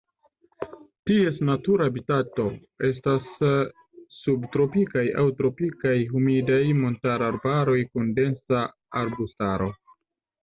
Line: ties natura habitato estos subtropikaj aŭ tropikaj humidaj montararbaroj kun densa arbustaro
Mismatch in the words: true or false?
true